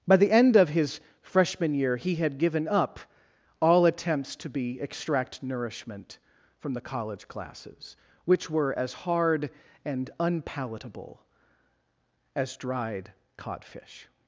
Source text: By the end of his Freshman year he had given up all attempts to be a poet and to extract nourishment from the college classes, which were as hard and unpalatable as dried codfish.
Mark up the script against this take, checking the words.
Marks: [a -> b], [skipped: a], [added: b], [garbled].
By the end of his Freshman year he had given up all attempts to be [skipped: a poet and to] extract nourishment from the college classes, which were as hard and unpalatable as dried codfish.